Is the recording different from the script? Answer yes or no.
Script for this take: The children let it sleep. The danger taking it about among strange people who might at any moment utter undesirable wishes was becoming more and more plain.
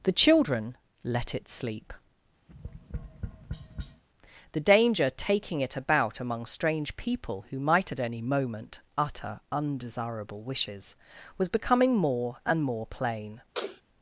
no